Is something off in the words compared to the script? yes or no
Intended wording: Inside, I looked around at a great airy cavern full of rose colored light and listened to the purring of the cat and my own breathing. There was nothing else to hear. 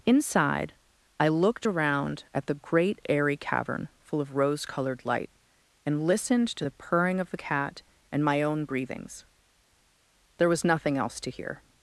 yes